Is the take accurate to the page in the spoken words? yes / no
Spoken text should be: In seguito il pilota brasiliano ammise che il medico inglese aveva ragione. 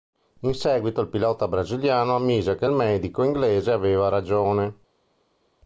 yes